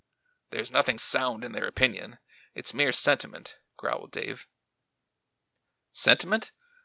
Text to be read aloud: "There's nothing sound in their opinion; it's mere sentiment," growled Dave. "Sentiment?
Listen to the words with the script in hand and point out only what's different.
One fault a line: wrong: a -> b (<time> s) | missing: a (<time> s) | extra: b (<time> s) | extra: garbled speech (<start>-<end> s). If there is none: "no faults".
no faults